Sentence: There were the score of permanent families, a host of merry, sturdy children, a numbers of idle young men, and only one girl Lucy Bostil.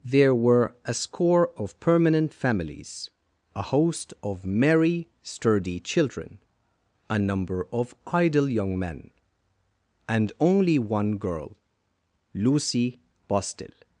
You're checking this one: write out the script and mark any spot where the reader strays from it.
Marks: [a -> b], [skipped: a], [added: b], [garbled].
There were [the -> a] score of permanent families, a host of merry, sturdy children, a [numbers -> number] of idle young men, and only one girl Lucy Bostil.